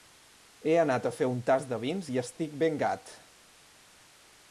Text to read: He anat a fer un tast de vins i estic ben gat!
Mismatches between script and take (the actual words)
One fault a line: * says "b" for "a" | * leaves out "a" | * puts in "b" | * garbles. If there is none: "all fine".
all fine